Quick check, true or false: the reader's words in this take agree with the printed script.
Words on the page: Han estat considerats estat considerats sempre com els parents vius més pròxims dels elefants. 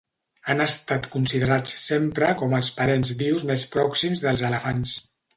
false